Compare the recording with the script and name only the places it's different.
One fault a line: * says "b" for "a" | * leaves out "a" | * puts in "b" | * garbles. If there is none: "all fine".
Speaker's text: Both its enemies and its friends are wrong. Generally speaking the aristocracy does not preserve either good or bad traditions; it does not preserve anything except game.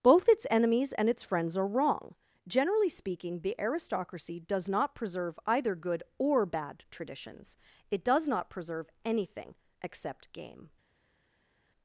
all fine